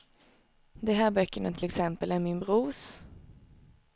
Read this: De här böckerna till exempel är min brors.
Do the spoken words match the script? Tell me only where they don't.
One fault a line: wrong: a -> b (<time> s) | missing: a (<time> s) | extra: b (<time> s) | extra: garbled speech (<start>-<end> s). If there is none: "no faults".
no faults